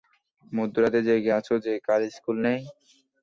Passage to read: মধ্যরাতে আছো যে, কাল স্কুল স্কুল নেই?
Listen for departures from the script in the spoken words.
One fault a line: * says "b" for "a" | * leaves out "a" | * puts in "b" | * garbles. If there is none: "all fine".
* puts in "জেগে"
* leaves out "স্কুল"